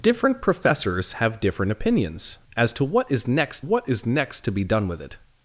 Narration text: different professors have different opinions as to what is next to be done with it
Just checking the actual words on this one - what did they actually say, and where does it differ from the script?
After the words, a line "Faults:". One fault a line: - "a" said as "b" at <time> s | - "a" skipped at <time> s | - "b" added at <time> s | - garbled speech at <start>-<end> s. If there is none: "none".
different professors have different opinions as to what is next what is next to be done with it
Faults:
- "what is next" added at 3.6 s